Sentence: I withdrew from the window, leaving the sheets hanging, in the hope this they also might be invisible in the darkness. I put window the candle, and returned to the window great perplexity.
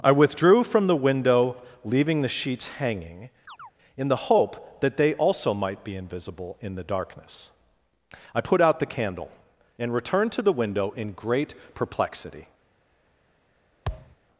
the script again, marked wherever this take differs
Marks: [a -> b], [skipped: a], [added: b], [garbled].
I withdrew from the window, leaving the sheets hanging, in the hope [this -> that] they also might be invisible in the darkness. I put [window -> out] the candle, and returned to the window [added: in] great perplexity.